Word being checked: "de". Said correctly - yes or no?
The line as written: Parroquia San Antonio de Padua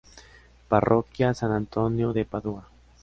yes